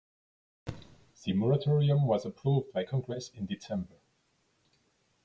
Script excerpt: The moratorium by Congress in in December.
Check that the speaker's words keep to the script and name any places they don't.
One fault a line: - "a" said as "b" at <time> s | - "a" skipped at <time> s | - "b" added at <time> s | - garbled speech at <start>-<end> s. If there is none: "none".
- "was approved" added at 2.1 s
- "in" skipped at 3.5 s